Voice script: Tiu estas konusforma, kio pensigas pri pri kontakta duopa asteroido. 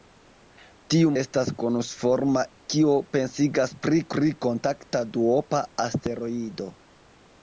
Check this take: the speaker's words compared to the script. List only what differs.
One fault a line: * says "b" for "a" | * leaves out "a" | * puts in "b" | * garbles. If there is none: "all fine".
all fine